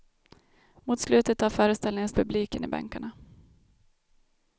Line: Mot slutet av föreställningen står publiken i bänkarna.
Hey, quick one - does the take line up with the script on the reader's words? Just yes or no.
no